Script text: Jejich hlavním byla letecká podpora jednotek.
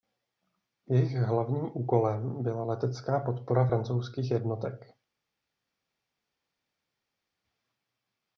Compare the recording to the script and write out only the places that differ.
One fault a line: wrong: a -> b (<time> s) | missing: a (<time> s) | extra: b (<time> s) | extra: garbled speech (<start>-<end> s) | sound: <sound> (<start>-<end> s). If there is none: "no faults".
extra: úkolem (1.7 s)
extra: francouzských (3.6 s)